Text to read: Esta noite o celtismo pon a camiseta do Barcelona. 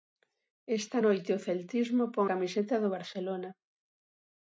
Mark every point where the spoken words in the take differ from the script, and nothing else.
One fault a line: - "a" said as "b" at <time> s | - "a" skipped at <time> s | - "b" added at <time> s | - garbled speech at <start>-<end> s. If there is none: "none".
- "a" skipped at 2.3 s